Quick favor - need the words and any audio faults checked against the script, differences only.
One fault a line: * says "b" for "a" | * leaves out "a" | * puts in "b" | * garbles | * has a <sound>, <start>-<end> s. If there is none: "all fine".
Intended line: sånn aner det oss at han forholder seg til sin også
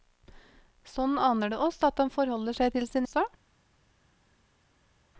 all fine